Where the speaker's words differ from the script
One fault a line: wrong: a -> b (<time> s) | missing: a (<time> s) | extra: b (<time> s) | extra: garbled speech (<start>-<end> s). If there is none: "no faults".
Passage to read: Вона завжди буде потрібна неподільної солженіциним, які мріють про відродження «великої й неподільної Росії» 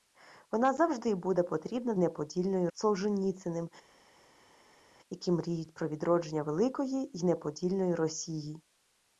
no faults